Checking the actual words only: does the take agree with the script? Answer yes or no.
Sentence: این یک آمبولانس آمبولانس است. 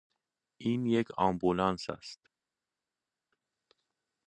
no